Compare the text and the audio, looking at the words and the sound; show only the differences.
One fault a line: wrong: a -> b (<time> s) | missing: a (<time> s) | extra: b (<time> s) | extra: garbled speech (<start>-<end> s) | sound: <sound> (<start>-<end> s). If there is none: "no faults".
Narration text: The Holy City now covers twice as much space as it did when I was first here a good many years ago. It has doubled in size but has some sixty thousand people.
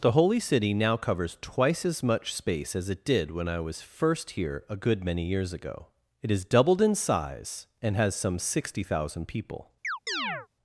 wrong: but -> and (7.8 s)
sound: chirp (9.8-10.5 s)